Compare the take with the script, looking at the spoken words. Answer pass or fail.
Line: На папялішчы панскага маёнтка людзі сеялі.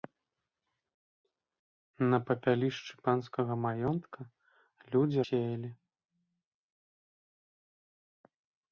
pass